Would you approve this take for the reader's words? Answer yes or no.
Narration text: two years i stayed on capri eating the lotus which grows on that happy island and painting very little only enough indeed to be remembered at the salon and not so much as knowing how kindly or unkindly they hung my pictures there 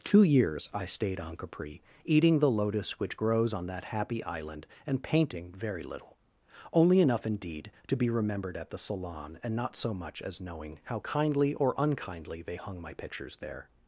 yes